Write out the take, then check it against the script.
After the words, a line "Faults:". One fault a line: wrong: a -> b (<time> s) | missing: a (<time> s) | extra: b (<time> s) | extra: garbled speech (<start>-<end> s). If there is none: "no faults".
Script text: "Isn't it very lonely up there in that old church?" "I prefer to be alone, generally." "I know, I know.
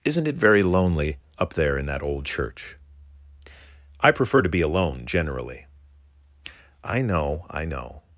"Isn't it very lonely up there in that old church?" "I prefer to be alone, generally." "I know, I know.
Faults:
no faults